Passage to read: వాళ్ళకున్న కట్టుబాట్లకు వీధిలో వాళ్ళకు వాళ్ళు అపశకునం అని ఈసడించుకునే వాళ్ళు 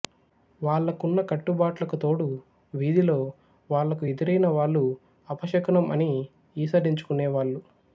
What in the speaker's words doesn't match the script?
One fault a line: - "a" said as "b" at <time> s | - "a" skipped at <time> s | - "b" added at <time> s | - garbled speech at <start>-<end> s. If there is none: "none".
- "తోడు" added at 1.9 s
- "ఎదురైన" added at 4.0 s